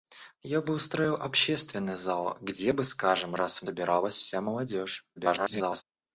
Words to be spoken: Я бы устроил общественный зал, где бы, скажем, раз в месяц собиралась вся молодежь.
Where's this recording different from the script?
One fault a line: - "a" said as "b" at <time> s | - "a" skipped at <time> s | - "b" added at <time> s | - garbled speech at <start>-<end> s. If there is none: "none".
- "месяц" skipped at 3.7 s
- garbled speech at 5.2-5.8 s